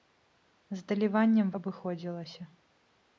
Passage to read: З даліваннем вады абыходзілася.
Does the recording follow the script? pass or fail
fail